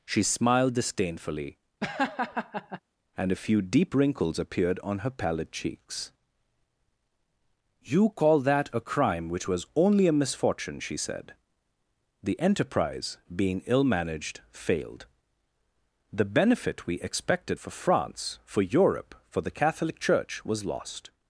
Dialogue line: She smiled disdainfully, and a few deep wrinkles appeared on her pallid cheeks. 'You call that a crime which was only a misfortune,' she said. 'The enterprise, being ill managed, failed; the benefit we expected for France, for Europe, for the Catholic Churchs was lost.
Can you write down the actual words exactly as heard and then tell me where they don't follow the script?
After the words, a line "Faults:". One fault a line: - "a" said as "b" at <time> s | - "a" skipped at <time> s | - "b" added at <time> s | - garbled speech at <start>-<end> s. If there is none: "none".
She smiled disdainfully, and a few deep wrinkles appeared on her pallid cheeks. 'You call that a crime which was only a misfortune,' she said. 'The enterprise, being ill managed, failed; the benefit we expected for France, for Europe, for the Catholic Church was lost.
Faults:
- "Churchs" said as "Church" at 20.0 s